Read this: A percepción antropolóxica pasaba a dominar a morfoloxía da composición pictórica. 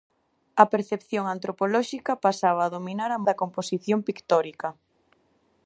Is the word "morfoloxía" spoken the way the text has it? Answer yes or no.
no